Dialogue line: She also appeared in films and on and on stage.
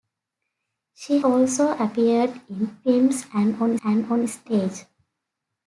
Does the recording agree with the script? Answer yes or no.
yes